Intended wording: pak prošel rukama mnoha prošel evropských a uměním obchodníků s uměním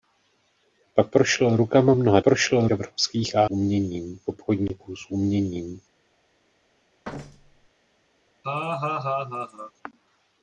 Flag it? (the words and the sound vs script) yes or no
yes